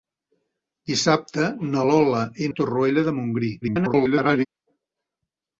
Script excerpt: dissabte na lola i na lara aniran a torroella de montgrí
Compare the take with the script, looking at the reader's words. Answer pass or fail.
fail